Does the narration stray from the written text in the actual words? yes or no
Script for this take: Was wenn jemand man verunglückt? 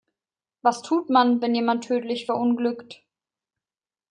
yes